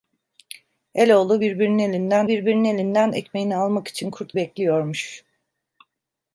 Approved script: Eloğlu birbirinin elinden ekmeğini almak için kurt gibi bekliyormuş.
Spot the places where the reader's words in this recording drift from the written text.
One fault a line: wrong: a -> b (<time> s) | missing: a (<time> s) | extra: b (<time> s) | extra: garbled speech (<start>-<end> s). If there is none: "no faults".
extra: birbirinin elinden (2.3 s)
missing: gibi (4.4 s)